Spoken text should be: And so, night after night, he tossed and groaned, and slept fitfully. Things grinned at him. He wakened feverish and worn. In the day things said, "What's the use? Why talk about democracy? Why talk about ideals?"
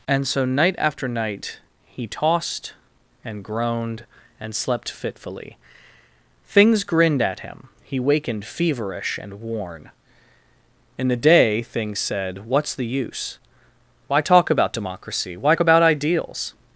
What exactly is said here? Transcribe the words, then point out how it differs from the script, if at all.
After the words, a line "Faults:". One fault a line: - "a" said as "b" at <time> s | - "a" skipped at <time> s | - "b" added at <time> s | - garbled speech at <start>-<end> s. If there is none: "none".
And so, night after night, he tossed and groaned, and slept fitfully. Things grinned at him. He wakened feverish and worn. In the day things said, "What's the use? Why talk about democracy? Why about ideals?"
Faults:
- "talk" skipped at 15.6 s